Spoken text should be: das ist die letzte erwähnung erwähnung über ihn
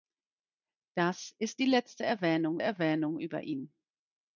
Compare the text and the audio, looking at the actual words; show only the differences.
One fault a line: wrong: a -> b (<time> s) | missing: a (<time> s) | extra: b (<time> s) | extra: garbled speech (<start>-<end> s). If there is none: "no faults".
no faults